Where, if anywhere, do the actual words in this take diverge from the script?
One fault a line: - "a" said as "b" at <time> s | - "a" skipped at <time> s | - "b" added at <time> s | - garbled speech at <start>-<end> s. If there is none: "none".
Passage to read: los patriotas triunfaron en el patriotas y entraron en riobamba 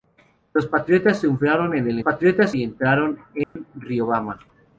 none